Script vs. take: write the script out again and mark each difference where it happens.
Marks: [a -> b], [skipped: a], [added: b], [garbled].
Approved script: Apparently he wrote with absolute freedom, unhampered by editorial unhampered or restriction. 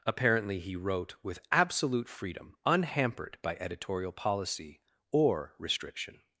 Apparently he wrote with absolute freedom, unhampered by editorial [unhampered -> policy] or restriction.